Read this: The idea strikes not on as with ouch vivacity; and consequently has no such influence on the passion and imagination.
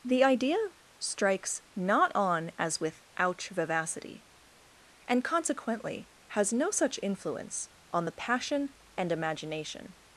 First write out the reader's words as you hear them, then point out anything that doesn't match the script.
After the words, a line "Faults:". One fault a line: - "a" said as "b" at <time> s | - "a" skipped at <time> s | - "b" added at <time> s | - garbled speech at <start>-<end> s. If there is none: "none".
The idea strikes not on as with ouch vivacity; and consequently has no such influence on the passion and imagination.
Faults:
none